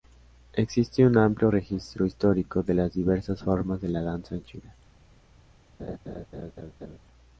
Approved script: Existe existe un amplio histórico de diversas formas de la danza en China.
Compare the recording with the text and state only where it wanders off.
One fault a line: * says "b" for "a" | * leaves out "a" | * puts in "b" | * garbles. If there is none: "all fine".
* leaves out "existe"
* puts in "registro"
* puts in "las"